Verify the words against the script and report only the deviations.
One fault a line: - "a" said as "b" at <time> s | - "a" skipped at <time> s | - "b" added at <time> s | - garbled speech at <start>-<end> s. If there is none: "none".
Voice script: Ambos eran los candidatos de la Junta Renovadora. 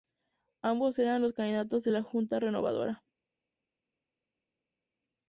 none